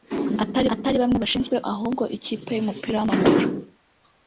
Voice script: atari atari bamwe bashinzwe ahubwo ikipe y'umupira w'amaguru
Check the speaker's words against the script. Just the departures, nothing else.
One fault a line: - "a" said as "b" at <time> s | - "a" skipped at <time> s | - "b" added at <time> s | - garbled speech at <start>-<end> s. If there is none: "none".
none